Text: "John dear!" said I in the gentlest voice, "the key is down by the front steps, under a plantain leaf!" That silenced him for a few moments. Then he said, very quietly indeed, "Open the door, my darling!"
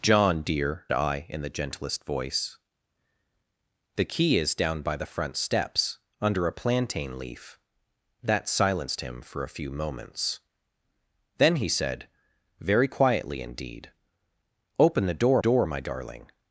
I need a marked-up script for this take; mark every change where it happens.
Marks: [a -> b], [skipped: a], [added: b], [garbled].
"John dear!" [skipped: said] I in the gentlest voice, "the key is down by the front steps, under a plantain leaf!" That silenced him for a few moments. Then he said, very quietly indeed, "Open the door, [added: door] my darling!"